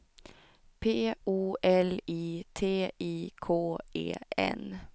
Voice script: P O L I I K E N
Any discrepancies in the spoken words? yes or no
yes